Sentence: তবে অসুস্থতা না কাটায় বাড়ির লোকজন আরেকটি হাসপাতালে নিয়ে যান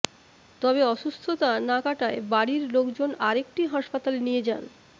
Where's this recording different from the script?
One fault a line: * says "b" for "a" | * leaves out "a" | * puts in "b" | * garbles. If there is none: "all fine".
all fine